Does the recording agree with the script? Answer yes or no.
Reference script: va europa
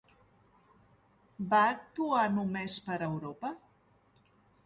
no